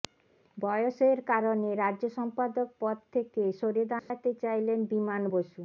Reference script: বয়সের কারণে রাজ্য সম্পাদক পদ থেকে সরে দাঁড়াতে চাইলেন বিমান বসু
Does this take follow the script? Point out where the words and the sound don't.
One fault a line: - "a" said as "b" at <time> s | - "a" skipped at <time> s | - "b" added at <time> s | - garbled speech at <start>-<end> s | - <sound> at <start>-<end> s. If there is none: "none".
- dropout at 4.0-4.1 s